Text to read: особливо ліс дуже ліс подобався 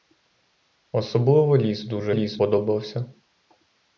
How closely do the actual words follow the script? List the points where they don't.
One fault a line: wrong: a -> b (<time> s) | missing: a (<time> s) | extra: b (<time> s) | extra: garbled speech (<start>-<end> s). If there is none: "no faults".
no faults